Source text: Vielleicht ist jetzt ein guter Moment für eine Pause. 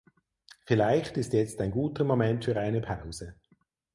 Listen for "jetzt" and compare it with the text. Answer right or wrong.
right